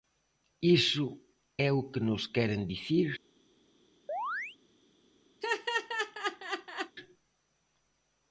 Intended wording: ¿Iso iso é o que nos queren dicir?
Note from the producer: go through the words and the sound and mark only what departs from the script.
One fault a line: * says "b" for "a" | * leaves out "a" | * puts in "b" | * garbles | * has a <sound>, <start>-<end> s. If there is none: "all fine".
* leaves out "iso"
* has a chirp, 4.1-4.6 s
* has a laugh, 5.4-7.0 s